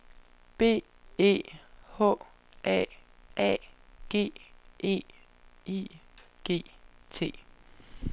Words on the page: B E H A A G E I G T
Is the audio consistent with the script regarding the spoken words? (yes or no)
yes